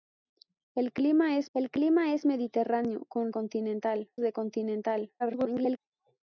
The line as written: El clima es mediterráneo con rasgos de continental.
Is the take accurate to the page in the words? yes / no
no